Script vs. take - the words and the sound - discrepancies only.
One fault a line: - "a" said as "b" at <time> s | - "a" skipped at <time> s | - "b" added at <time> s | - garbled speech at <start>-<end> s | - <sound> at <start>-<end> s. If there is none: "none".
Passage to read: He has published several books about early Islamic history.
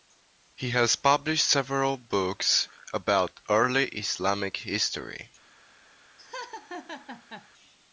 - laugh at 6.2-7.5 s